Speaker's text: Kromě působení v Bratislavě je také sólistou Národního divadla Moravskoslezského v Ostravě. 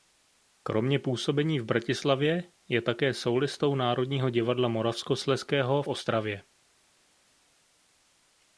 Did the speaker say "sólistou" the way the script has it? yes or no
yes